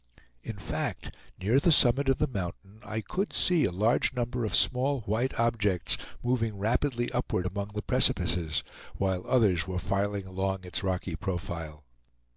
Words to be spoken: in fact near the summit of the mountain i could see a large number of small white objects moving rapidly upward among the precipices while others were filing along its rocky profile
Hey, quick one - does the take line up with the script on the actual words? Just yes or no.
yes